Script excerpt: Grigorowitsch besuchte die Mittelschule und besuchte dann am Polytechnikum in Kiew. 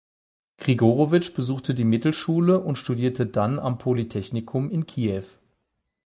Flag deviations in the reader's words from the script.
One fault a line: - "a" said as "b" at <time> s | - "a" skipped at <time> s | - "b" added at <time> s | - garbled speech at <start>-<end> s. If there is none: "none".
- "besuchte" said as "studierte" at 2.8 s